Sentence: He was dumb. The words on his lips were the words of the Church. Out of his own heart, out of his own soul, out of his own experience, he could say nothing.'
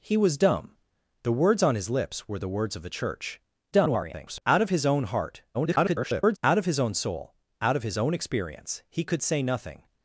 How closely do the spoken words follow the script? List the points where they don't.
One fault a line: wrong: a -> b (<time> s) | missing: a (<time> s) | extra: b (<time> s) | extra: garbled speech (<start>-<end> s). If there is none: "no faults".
extra: garbled speech (3.7-4.4 s)
extra: garbled speech (5.5-6.4 s)